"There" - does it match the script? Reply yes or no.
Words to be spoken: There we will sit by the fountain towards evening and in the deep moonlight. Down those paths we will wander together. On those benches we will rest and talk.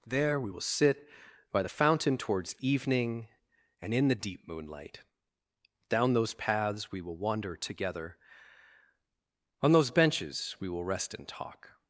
yes